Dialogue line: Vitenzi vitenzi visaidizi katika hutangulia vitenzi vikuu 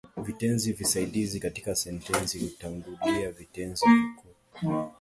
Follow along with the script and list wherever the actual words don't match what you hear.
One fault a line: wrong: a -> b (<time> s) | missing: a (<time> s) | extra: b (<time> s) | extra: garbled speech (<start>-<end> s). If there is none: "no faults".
missing: vitenzi (0.7 s)
extra: sentensi (1.7 s)